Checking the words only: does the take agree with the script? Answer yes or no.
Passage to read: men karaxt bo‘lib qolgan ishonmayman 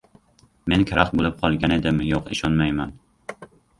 no